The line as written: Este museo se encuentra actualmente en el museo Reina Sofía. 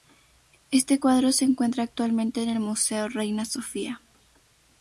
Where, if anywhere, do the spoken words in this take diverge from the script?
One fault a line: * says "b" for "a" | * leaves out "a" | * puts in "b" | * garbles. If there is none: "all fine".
* says "cuadro" for "museo"